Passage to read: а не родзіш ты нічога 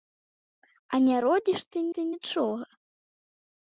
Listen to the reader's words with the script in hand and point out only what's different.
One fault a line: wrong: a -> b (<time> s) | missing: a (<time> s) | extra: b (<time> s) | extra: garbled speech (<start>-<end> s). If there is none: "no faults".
extra: ты (2.0 s)